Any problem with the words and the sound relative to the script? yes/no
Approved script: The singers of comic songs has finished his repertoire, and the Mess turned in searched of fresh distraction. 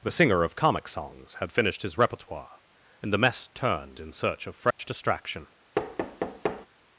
yes